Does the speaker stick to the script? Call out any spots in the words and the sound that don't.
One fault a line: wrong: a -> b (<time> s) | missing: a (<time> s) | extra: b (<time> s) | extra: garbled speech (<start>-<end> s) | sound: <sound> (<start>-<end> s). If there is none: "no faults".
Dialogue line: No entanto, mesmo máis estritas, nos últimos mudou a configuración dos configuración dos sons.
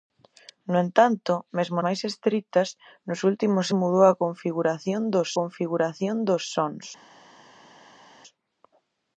no faults